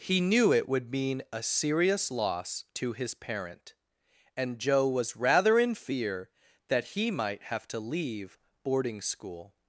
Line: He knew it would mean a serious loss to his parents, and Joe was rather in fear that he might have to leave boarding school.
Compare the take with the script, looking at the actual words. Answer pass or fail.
fail